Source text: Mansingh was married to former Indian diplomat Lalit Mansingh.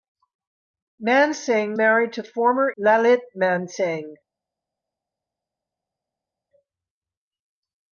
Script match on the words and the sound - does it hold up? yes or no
no